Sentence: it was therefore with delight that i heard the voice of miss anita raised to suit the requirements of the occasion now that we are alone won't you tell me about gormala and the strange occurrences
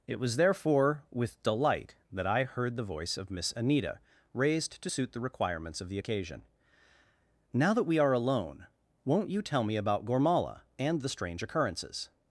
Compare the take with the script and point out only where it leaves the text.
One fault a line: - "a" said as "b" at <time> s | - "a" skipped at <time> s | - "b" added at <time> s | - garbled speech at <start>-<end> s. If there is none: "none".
none